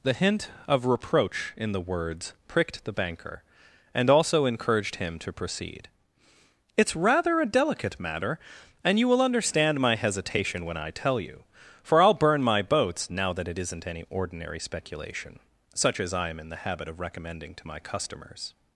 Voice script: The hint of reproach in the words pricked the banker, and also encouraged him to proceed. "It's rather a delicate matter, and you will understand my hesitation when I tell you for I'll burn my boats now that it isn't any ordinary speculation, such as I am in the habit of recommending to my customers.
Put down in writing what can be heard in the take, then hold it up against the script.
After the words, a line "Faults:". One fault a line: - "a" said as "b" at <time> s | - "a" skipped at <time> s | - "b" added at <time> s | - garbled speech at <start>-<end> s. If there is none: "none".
The hint of reproach in the words pricked the banker, and also encouraged him to proceed. "It's rather a delicate matter, and you will understand my hesitation when I tell you for I'll burn my boats now that it isn't any ordinary speculation, such as I am in the habit of recommending to my customers.
Faults:
none